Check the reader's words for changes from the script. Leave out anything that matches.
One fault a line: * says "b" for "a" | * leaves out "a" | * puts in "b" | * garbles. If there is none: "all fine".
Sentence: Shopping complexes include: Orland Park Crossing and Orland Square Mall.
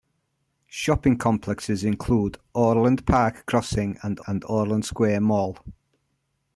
* puts in "and"